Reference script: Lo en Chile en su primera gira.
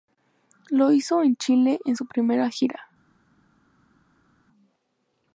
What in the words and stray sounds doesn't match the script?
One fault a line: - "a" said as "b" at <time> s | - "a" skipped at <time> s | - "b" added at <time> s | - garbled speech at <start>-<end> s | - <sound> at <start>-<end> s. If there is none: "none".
- "hizo" added at 0.9 s